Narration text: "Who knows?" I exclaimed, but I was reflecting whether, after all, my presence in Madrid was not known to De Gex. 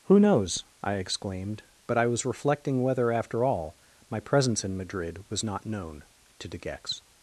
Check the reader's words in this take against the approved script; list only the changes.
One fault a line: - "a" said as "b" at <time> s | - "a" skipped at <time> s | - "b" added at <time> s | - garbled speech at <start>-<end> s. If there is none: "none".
none